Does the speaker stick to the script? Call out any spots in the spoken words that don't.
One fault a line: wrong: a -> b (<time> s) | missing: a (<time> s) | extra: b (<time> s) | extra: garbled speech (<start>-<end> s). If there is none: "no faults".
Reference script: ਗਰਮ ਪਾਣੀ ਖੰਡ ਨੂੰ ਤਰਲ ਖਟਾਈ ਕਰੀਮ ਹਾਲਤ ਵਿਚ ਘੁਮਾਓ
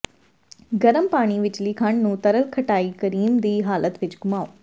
extra: ਵਿਚਲੀ (1.4 s)
extra: ਦੀ (3.4 s)